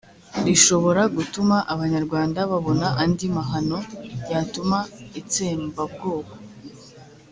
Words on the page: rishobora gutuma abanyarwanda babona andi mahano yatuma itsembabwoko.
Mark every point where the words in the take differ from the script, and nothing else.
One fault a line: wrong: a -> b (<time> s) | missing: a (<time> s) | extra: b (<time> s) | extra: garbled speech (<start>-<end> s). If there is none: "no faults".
no faults